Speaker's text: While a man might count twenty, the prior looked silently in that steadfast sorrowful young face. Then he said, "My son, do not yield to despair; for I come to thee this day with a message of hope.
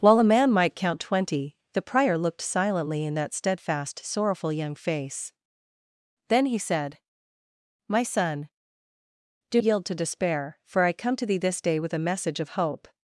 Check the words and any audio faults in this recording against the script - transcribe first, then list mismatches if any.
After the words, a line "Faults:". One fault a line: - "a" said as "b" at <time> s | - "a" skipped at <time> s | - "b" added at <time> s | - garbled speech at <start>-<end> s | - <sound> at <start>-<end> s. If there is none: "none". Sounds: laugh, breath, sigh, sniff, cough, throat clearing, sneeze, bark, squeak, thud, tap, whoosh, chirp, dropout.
While a man might count twenty, the prior looked silently in that steadfast sorrowful young face. Then he said, "My son, do yield to despair; for I come to thee this day with a message of hope.
Faults:
- "not" skipped at 9.6 s